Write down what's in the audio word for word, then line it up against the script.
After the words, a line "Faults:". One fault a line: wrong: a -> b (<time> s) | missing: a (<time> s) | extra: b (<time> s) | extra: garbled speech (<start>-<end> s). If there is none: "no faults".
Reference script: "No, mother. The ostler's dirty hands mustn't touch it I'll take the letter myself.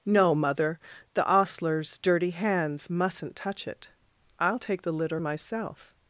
"No, mother. The ostler's dirty hands mustn't touch it I'll take the litter myself.
Faults:
wrong: letter -> litter (4.9 s)